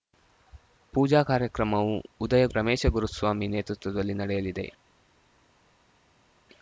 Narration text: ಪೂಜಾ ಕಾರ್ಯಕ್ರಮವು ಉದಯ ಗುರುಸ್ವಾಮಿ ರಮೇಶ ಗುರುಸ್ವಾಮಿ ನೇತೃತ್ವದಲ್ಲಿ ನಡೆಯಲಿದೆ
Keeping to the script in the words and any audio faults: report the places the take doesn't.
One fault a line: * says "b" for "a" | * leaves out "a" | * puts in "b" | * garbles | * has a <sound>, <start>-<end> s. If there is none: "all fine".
* leaves out "ಗುರುಸ್ವಾಮಿ"